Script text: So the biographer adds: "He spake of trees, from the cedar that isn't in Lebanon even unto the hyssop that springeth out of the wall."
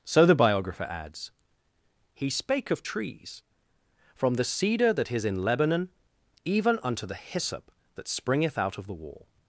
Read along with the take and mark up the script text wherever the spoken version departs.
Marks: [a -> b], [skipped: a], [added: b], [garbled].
So the biographer adds: "He spake of trees, from the cedar that [isn't -> is] in Lebanon even unto the hyssop that springeth out of the wall."